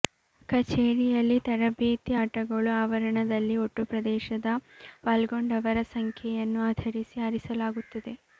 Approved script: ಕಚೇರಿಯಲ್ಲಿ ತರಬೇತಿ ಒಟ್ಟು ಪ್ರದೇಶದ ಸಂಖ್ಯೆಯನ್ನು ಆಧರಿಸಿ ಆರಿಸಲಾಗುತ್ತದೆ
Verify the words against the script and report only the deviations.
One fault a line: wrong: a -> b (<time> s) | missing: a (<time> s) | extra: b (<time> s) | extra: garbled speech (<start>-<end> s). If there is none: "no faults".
extra: ಆಟಗಳು ಆವರಣದಲ್ಲಿ (2.2 s)
extra: ಪಾಲ್ಗೊಂಡವರ (5.0 s)